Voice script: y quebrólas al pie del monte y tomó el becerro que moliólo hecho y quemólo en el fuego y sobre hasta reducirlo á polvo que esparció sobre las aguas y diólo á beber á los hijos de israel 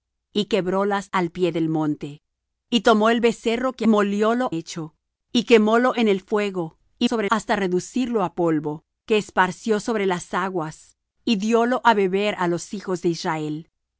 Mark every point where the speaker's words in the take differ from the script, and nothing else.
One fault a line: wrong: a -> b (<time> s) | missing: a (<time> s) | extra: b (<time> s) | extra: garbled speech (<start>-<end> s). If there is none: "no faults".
no faults